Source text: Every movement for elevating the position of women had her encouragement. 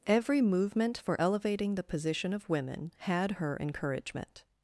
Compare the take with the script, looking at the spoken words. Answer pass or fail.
pass